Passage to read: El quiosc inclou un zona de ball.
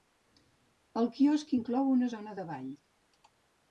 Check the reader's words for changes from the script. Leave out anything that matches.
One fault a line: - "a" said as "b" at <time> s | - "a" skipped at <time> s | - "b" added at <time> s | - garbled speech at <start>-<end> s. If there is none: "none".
- "un" said as "una" at 2.0 s